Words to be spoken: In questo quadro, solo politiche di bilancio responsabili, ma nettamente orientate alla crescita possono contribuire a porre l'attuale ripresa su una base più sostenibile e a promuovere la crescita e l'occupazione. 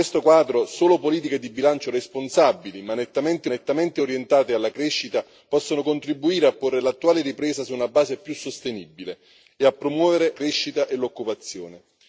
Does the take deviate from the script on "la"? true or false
true